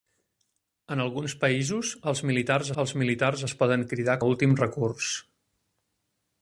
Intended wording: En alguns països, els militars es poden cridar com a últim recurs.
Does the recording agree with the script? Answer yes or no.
no